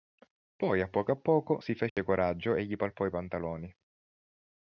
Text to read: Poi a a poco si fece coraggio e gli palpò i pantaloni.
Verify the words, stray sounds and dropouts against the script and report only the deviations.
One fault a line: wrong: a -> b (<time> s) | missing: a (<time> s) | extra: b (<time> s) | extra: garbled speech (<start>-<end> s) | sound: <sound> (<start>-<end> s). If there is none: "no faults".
extra: poco (0.9 s)
sound: dropout (1.9-2.0 s)